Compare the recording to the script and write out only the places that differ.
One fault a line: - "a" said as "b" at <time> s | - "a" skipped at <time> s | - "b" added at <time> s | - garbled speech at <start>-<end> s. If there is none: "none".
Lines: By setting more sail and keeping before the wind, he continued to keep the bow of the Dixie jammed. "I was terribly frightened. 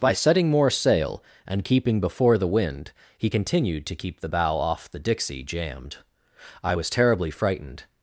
- "of" said as "off" at 4.6 s